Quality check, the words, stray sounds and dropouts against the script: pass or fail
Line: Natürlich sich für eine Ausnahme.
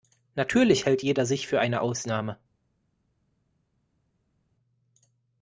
fail